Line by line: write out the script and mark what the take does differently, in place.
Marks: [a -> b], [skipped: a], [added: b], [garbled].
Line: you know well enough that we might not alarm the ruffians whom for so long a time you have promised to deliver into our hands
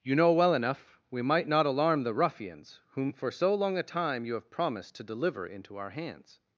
you know well enough [skipped: that] we might not alarm the ruffians whom for so long a time you have promised to deliver into our hands